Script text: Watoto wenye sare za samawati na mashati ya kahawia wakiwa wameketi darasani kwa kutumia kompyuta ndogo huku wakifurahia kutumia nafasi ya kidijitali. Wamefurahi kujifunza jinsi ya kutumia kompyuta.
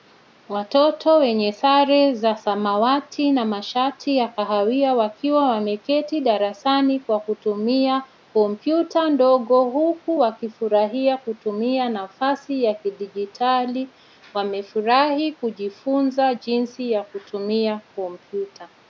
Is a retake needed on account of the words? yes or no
no